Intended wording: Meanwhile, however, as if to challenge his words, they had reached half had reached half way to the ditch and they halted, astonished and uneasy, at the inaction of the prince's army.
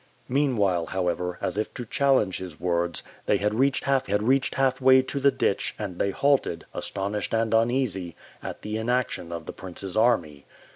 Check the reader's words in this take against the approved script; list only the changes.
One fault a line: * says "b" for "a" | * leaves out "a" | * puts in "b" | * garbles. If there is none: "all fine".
all fine